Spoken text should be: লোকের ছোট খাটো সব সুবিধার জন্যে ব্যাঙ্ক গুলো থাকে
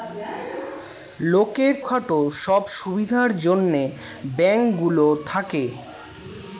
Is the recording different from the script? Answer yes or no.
yes